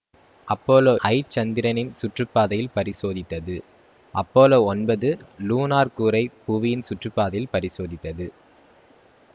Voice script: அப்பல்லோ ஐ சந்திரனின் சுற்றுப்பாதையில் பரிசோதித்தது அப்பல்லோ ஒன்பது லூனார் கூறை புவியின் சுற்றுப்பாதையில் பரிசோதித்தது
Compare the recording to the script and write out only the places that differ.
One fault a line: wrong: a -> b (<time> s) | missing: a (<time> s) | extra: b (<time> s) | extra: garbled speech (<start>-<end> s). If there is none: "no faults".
no faults